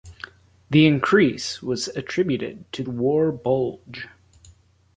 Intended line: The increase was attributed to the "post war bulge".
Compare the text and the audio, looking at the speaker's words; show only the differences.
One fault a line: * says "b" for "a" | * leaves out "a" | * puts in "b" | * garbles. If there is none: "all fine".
* leaves out "the post"